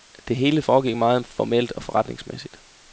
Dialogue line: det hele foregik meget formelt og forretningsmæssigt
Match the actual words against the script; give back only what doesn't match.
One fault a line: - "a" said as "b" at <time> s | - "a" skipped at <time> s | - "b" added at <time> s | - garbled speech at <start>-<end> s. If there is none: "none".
none